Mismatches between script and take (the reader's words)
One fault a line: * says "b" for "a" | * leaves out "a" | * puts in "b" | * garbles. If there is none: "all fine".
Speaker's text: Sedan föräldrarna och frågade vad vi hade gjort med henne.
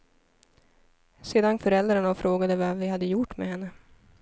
all fine